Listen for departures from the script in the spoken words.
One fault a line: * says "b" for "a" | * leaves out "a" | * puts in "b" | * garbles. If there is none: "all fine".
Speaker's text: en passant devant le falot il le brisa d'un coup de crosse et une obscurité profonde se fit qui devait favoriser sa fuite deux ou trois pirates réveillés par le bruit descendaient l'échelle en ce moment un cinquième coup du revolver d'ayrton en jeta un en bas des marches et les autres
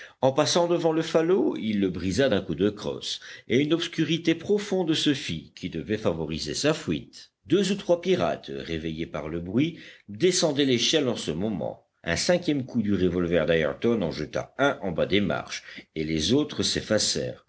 all fine